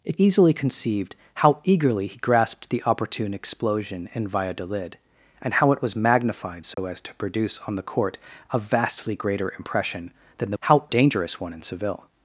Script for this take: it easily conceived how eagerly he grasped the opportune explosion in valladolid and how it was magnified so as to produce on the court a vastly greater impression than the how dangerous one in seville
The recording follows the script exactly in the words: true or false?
true